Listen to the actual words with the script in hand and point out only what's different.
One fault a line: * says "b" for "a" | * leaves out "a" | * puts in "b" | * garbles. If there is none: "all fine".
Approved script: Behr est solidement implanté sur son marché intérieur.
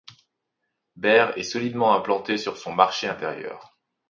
all fine